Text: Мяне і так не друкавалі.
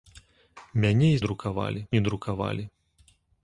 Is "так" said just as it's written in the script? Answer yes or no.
no